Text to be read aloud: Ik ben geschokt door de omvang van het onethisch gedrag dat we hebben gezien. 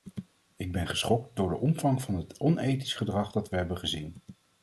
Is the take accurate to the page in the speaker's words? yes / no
yes